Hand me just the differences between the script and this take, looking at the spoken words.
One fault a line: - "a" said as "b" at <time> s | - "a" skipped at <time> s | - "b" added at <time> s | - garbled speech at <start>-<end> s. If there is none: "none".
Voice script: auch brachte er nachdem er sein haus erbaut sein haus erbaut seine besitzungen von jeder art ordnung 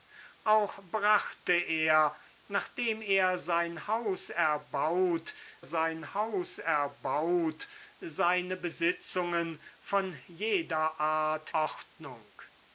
none